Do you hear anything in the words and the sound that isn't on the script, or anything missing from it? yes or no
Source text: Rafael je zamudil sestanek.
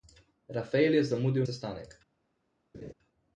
yes